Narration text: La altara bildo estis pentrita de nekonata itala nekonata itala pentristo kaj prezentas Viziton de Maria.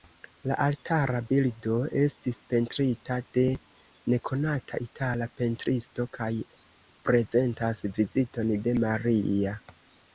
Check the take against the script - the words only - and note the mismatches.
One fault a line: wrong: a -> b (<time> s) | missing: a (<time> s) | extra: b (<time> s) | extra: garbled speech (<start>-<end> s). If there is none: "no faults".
missing: nekonata itala (5.3 s)